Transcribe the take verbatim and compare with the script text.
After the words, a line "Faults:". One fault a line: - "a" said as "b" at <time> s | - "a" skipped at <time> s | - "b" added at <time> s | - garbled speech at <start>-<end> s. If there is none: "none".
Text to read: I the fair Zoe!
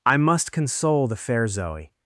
I must console the fair Zoe!
Faults:
- "must console" added at 0.2 s